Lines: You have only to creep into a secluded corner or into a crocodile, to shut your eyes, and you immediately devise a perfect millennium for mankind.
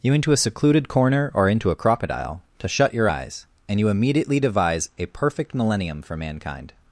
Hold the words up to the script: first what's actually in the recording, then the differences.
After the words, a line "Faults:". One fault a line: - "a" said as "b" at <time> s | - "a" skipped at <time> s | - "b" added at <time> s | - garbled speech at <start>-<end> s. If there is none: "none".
You into a secluded corner or into a crocodile, to shut your eyes, and you immediately devise a perfect millennium for mankind.
Faults:
- "have only to creep" skipped at 0.1 s